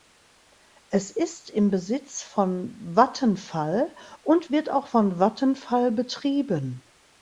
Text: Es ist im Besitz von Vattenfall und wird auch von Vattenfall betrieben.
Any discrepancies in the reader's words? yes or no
no